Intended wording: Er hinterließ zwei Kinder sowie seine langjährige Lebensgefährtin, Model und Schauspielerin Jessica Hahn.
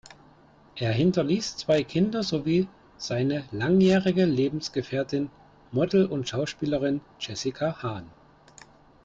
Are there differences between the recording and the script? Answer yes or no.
no